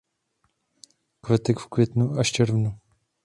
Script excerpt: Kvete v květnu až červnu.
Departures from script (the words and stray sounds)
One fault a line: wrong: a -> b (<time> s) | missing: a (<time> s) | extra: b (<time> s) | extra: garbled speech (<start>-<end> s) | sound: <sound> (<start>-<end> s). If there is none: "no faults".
no faults